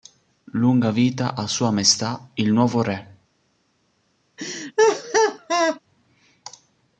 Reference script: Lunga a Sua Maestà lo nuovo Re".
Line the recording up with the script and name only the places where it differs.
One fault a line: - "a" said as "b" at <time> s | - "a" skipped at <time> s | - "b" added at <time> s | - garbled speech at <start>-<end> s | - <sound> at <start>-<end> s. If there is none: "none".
- "vita" added at 0.9 s
- "lo" said as "il" at 2.3 s
- laugh at 4.4-5.8 s